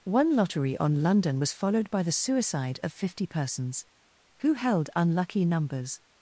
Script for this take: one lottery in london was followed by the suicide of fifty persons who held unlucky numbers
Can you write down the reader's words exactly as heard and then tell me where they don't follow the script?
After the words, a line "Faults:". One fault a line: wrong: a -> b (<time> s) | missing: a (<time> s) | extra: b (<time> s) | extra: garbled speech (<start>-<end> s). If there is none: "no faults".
one lottery on london was followed by the suicide of fifty persons who held unlucky numbers
Faults:
wrong: in -> on (0.8 s)